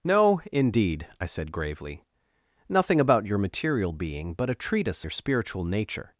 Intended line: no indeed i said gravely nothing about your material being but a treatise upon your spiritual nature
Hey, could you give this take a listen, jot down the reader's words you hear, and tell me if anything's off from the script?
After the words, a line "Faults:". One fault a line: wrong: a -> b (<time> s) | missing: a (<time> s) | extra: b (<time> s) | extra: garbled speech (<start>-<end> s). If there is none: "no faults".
no indeed i said gravely nothing about your material being but a treatise your spiritual nature
Faults:
missing: upon (5.0 s)